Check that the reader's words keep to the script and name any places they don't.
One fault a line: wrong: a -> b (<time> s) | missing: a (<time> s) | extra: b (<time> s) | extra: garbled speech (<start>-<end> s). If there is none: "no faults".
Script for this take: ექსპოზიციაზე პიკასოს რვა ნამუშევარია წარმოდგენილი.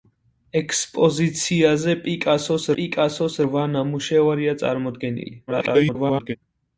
extra: პიკასოს (2.8 s)
extra: garbled speech (5.5-6.4 s)